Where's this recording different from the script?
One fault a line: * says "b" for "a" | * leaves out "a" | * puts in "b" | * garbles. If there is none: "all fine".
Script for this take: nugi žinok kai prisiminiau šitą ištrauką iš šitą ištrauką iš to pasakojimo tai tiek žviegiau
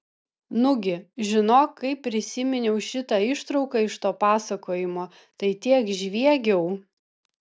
* leaves out "šitą ištrauką iš"